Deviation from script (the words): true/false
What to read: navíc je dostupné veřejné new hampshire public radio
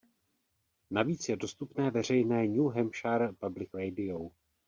false